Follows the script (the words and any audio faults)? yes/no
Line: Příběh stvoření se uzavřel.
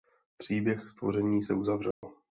no